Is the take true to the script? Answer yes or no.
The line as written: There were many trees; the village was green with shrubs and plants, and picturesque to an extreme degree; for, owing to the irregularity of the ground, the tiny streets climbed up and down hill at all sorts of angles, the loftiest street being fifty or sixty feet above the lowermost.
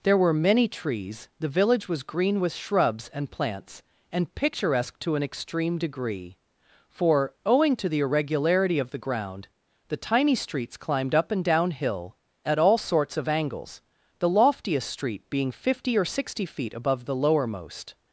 yes